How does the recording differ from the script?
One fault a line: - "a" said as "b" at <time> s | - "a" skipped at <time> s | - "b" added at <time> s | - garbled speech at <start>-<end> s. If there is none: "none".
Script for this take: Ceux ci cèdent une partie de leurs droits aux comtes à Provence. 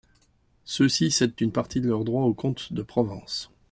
- "à" said as "de" at 2.7 s